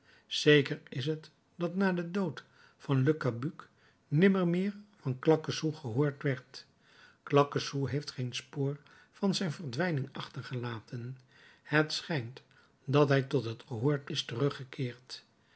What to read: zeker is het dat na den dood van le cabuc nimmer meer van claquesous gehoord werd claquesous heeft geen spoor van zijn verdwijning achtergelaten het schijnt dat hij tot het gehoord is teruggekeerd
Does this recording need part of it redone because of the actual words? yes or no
no